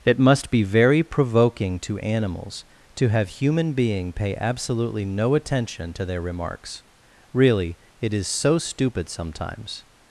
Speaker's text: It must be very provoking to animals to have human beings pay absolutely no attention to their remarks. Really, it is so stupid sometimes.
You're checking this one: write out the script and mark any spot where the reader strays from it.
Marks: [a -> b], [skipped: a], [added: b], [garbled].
It must be very provoking to animals to have human [beings -> being] pay absolutely no attention to their remarks. Really, it is so stupid sometimes.